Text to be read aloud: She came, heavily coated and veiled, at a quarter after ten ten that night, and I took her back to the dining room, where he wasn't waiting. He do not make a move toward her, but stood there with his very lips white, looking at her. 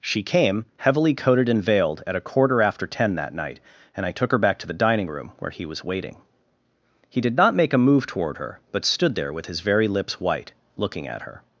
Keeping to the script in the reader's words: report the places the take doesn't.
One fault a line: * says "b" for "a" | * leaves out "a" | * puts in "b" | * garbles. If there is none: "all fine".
* leaves out "ten"
* says "was" for "wasn't"
* says "did" for "do"